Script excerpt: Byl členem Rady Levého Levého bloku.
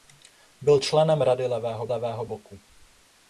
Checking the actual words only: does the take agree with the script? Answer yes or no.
yes